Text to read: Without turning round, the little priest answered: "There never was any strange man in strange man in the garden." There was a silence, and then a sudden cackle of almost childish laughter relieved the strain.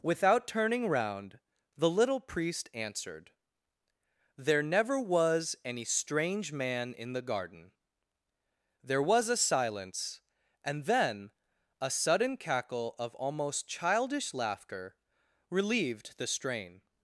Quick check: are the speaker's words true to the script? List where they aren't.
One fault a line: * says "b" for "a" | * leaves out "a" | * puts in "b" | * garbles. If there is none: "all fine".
* leaves out "strange man in"